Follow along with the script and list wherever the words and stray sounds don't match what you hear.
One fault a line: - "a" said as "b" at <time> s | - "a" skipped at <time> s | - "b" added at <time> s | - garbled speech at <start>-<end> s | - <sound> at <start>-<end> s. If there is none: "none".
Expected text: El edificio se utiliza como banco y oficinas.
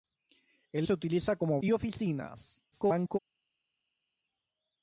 - "edificio" skipped at 0.9 s
- "banco" skipped at 1.6 s
- garbled speech at 2.7-3.2 s